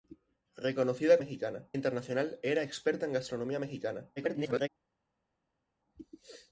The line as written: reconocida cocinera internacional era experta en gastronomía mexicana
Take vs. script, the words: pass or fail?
fail